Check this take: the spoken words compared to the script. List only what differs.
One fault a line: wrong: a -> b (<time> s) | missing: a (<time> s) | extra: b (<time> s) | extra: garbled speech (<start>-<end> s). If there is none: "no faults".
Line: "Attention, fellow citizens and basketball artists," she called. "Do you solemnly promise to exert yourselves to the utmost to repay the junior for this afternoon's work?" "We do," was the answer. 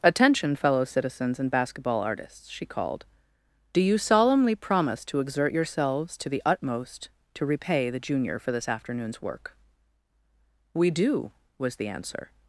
no faults